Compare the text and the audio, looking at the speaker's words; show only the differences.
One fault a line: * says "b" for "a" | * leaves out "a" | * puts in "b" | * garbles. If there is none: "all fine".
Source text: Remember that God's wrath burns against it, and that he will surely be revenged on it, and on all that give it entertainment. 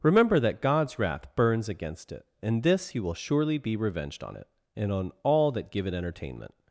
* says "this" for "that"